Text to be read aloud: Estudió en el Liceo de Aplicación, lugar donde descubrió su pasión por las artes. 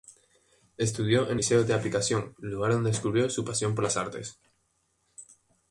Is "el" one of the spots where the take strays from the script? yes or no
yes